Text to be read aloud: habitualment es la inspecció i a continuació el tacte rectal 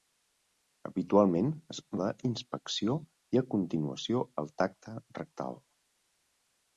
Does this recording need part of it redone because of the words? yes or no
no